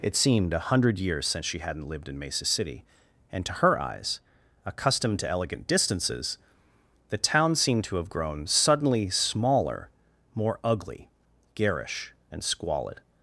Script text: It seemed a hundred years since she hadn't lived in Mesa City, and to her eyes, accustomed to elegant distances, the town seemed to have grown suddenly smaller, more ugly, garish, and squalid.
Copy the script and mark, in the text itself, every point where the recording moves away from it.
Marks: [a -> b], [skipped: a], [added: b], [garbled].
It seemed a hundred years since she hadn't lived in Mesa City, and to her eyes, accustomed to elegant distances, the town seemed to have grown suddenly smaller, more ugly, garish, and squalid.